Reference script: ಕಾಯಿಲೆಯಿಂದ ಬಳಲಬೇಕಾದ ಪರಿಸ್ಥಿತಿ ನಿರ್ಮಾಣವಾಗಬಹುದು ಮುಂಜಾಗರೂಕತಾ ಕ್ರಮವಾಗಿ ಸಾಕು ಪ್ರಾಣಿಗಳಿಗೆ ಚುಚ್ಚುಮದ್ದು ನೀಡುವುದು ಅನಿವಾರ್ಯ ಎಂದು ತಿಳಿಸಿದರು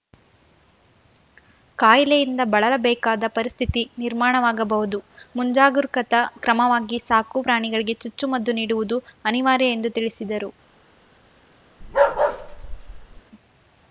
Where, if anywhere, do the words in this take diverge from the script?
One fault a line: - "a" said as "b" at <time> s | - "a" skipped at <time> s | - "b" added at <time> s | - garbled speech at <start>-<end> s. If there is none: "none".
none